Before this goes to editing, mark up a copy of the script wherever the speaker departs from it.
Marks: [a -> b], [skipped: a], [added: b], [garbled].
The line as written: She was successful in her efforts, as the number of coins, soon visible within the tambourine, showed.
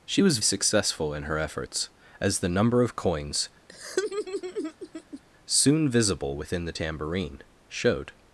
She was successful in her efforts, as the number of coins, soon visible within the tambourine, showed.